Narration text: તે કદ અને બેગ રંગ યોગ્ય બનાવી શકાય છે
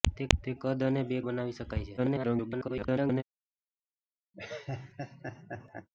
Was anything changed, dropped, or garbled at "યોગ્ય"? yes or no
yes